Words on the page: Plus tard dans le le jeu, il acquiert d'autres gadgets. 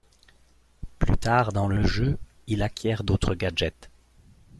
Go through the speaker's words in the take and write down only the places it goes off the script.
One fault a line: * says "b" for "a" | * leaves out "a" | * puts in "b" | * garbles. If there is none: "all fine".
all fine